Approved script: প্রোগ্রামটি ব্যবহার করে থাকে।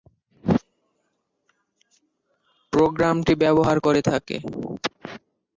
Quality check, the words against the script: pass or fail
pass